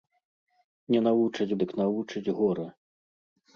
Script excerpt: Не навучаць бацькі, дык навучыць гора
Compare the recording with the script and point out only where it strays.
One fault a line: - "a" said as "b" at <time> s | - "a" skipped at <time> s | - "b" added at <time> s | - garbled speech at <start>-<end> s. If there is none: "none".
- "бацькі" skipped at 1.6 s